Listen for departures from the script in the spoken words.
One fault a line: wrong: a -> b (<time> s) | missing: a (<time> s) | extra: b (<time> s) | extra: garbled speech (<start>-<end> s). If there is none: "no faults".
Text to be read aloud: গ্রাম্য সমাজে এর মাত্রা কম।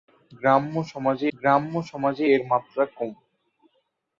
extra: গ্রাম্য সমাজে (1.3 s)